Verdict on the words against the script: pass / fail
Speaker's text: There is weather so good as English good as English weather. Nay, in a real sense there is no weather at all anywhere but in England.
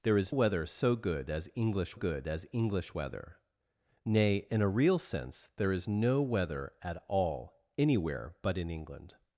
pass